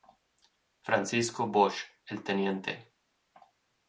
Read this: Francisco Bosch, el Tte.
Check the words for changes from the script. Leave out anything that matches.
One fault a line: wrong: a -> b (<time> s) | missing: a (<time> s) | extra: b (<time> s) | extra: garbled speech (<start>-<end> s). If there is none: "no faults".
no faults